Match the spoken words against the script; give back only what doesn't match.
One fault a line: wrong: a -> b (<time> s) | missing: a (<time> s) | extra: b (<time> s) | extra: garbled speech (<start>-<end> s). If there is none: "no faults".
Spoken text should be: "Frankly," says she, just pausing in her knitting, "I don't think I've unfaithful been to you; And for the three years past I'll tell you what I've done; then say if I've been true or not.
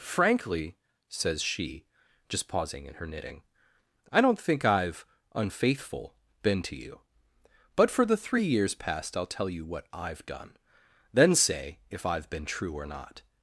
wrong: And -> But (7.7 s)